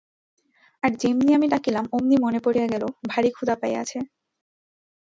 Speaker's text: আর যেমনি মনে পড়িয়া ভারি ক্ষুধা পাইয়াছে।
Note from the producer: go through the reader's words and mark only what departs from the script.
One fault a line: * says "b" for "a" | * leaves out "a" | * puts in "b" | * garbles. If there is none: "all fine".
* puts in "আমি ডাকিলাম অমনি"
* puts in "গেল"